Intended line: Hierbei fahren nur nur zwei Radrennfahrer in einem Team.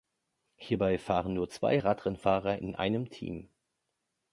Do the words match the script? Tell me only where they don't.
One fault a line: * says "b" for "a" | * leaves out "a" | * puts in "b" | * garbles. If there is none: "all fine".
* leaves out "nur"